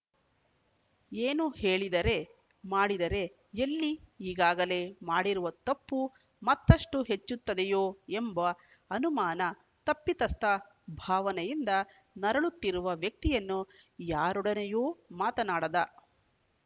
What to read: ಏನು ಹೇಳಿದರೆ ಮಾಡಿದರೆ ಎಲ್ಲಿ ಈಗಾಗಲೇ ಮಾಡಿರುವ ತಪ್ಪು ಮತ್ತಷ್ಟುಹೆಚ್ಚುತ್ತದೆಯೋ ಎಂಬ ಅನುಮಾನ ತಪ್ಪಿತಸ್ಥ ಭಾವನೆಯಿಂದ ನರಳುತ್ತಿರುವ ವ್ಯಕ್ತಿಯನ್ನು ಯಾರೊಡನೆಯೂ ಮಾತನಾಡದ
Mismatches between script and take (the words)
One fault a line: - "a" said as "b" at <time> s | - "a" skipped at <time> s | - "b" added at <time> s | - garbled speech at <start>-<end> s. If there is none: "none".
none